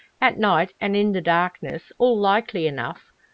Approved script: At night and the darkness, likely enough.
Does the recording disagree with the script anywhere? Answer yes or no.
yes